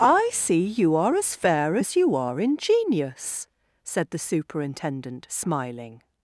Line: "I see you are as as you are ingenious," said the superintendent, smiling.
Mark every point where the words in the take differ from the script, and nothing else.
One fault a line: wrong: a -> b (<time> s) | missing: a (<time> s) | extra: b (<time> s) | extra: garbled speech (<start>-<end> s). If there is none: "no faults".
extra: fair (1.4 s)